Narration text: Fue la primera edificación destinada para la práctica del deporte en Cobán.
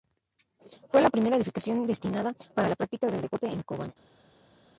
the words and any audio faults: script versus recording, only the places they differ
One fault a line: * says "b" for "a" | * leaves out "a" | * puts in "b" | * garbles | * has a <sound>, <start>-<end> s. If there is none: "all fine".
all fine